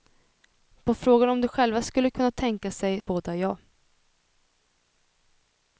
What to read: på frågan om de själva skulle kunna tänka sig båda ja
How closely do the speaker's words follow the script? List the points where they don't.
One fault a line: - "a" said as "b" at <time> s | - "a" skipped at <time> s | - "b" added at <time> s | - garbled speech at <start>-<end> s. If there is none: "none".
none